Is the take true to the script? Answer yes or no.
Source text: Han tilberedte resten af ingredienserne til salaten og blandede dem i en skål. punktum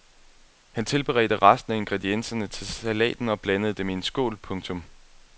yes